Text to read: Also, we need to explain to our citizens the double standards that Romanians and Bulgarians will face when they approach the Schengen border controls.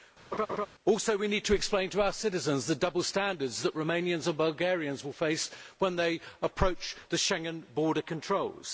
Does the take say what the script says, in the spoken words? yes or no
yes